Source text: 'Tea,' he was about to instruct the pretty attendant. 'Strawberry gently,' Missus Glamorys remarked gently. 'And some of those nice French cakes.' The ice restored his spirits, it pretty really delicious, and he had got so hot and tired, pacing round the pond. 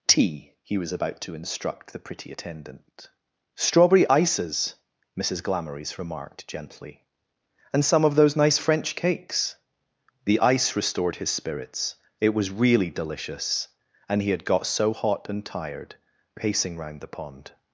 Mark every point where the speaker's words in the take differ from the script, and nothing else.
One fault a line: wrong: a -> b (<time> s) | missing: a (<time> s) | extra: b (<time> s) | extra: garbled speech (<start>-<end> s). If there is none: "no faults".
wrong: gently -> ices (4.1 s)
wrong: pretty -> was (12.3 s)